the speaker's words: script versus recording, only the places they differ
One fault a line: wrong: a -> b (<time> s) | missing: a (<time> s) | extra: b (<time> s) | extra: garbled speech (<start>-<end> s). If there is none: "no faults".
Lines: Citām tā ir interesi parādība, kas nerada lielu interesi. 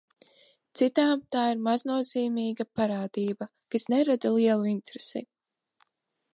wrong: interesi -> maznozīmīga (1.7 s)